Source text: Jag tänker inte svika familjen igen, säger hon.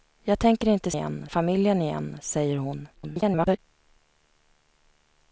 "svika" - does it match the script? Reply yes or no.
no